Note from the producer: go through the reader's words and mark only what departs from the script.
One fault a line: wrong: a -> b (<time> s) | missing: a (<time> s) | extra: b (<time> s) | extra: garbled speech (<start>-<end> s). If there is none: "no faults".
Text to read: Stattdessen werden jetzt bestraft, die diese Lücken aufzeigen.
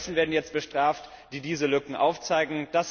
no faults